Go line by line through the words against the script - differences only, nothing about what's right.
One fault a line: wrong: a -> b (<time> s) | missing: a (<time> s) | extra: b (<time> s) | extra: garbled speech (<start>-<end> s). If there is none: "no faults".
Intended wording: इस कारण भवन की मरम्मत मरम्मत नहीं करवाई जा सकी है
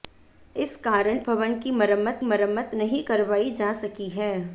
no faults